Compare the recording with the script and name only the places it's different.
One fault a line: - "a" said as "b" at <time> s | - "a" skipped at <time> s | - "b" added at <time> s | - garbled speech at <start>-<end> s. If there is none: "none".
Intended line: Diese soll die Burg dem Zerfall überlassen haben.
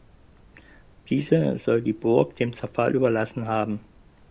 none